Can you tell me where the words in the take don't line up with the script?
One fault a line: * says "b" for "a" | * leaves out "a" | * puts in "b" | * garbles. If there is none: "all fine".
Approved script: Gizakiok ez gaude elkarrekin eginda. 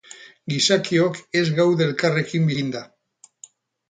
all fine